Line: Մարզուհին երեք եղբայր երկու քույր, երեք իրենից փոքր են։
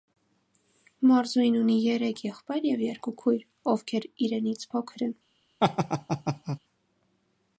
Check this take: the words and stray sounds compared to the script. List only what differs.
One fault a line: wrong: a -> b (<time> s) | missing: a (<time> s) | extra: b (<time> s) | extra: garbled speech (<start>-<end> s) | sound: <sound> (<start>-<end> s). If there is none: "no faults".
extra: ունի (1.6 s)
extra: և (2.7 s)
wrong: երեք -> ովքեր (3.8 s)
sound: laugh (5.6-6.6 s)